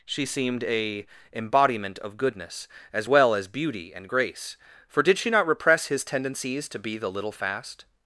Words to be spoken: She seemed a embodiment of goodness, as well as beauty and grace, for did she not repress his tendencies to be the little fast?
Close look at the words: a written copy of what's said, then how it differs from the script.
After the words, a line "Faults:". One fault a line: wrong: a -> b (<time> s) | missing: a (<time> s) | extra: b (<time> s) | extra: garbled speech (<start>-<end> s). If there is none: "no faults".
She seemed a embodiment of goodness, as well as beauty and grace, for did she not repress his tendencies to be the little fast?
Faults:
no faults